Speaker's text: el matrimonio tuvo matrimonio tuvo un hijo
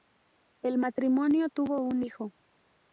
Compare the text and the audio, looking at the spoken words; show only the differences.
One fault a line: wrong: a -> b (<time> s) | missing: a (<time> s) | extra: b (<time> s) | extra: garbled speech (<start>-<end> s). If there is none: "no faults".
missing: matrimonio tuvo (1.8 s)